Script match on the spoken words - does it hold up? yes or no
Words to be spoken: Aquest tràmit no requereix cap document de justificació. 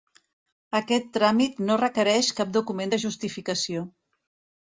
yes